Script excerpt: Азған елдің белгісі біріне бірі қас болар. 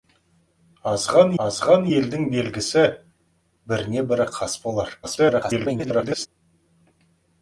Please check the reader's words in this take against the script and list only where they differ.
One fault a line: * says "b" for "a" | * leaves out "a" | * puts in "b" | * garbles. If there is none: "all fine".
* puts in "азған"
* garbles